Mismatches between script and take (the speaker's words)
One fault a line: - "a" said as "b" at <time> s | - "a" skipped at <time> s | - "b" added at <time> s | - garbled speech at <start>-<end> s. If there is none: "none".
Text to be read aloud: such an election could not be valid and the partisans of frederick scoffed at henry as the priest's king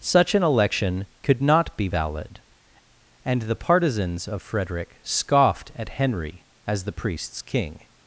none